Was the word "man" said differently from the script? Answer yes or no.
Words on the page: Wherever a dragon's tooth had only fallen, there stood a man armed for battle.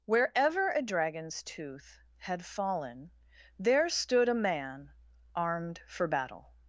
no